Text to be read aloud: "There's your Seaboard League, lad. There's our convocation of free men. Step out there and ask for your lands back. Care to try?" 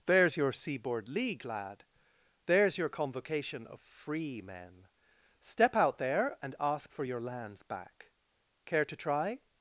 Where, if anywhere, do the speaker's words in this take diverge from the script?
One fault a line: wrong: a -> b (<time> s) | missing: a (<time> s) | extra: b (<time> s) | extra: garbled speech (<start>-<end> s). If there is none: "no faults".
wrong: our -> your (2.8 s)